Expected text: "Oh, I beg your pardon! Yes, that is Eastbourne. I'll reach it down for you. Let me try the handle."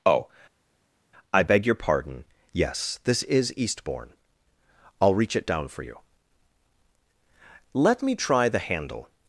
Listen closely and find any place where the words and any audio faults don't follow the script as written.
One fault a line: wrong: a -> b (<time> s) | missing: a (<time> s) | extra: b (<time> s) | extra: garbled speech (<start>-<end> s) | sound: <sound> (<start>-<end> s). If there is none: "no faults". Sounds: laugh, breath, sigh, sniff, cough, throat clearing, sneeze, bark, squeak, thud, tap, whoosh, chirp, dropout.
wrong: that -> this (3.0 s)